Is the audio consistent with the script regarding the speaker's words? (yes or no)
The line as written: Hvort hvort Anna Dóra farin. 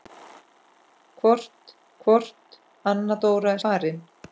yes